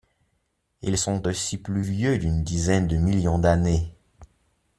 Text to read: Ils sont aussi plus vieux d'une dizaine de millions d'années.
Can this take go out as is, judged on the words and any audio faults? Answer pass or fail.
pass